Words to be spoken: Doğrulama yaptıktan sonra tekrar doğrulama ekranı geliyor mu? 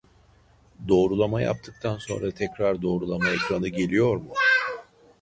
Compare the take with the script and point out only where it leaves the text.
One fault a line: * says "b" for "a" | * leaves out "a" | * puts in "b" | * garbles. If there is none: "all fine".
all fine